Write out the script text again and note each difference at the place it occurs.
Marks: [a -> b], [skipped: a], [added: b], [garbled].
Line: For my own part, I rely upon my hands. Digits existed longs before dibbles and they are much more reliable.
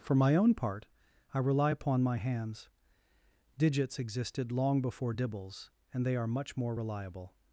For my own part, I rely upon my hands. Digits existed [longs -> long] before dibbles and they are much more reliable.